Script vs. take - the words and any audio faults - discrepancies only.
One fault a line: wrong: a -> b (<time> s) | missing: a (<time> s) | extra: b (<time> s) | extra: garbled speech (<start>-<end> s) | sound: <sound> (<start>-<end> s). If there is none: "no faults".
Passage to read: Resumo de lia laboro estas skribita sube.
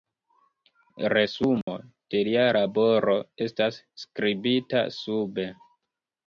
sound: dropout (1.6-1.7 s)